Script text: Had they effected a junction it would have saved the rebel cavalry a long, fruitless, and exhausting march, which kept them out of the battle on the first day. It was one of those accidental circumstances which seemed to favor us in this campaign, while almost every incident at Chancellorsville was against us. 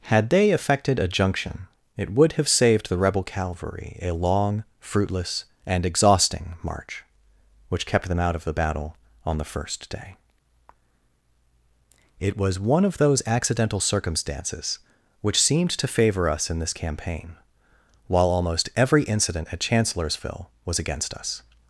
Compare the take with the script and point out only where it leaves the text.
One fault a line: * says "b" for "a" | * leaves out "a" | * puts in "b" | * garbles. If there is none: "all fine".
all fine